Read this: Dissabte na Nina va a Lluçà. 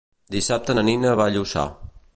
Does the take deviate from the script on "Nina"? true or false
false